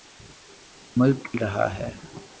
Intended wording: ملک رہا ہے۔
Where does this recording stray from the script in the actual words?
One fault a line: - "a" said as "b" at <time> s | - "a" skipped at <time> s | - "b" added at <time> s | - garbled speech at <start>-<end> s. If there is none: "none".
none